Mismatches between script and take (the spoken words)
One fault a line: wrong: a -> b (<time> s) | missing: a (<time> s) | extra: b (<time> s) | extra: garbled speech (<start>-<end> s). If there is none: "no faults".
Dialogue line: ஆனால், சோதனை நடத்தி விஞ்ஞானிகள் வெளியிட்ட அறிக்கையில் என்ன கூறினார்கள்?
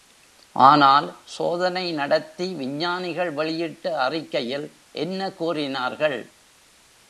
no faults